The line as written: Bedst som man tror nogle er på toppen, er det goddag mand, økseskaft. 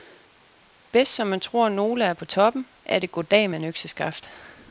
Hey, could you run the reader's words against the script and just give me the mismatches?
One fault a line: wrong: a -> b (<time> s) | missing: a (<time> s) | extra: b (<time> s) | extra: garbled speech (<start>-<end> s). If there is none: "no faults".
no faults